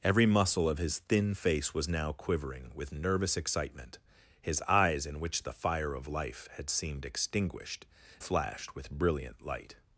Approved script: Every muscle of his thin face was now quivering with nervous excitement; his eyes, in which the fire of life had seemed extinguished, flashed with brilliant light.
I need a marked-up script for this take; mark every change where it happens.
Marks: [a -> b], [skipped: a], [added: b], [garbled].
Every muscle of his thin face was now quivering with nervous excitement; his eyes, in which the fire of life had seemed extinguished, flashed with brilliant light.